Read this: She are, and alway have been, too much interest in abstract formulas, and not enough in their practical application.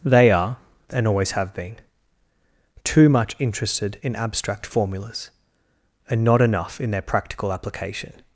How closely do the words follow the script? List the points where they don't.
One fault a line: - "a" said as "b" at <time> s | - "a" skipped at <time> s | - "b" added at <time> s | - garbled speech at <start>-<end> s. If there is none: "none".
- "She" said as "They" at 0.0 s
- "alway" said as "always" at 1.1 s
- "interest" said as "interested" at 3.4 s